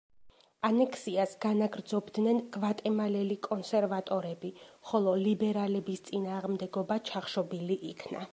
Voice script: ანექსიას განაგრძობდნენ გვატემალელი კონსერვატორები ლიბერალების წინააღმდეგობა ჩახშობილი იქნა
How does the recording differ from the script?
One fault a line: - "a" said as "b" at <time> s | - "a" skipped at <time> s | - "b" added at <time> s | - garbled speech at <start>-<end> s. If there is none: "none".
- "ხოლო" added at 4.9 s